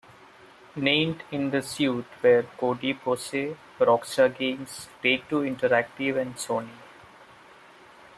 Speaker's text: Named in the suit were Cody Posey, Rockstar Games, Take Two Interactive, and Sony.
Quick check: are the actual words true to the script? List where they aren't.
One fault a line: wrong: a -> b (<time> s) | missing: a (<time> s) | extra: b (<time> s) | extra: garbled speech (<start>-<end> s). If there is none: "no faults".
no faults